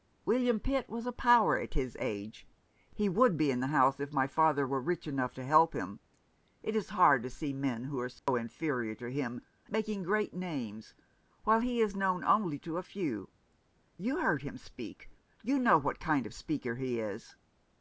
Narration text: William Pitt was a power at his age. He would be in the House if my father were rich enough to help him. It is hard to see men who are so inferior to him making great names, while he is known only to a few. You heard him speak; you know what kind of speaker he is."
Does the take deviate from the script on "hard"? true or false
false